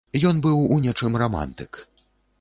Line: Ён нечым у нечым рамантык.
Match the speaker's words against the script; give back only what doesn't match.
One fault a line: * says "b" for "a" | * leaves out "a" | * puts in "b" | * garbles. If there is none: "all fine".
* says "быў" for "нечым"